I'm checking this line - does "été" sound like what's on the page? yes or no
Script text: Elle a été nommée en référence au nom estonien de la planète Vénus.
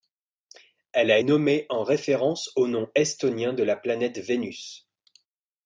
no